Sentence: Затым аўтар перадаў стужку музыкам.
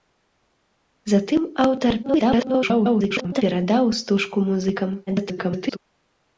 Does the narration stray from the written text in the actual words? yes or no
yes